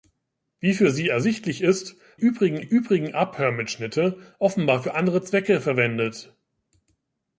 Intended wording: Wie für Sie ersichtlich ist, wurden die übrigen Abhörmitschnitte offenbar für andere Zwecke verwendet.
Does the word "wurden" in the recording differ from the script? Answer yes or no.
yes